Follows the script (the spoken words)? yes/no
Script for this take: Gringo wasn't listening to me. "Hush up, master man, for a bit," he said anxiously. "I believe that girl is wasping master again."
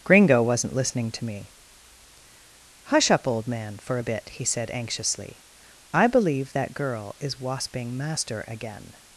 no